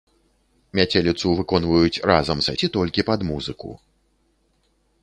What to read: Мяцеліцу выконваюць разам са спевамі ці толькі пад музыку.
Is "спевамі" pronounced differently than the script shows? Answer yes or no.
yes